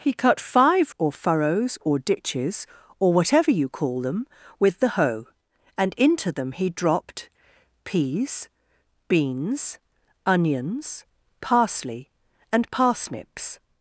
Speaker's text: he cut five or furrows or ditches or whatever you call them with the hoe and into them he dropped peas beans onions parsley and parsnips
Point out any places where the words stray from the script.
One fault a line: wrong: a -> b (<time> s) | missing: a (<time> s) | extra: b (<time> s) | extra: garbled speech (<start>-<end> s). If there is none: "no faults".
no faults